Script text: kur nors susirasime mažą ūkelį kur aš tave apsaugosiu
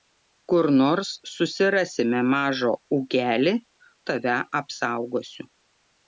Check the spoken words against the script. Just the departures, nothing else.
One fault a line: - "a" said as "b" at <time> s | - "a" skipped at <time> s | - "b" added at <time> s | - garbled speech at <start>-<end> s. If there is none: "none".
- "kur aš" skipped at 3.5 s